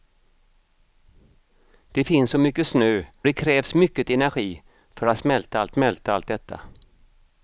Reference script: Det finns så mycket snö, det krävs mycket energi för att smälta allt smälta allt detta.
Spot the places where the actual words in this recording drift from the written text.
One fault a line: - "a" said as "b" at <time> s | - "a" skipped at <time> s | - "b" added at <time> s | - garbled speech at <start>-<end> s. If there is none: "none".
none